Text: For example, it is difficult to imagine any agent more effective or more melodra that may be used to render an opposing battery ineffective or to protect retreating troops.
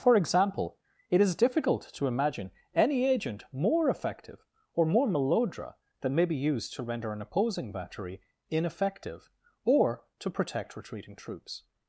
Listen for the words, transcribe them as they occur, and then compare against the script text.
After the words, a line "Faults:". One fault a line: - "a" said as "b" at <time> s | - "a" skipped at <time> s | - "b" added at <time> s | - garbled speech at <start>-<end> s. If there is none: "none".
For example, it is difficult to imagine any agent more effective or more melodra that may be used to render an opposing battery ineffective or to protect retreating troops.
Faults:
none